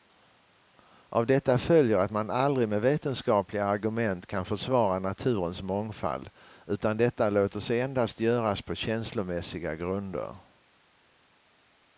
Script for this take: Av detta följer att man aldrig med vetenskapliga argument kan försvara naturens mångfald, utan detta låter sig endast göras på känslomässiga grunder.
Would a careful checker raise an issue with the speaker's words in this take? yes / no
no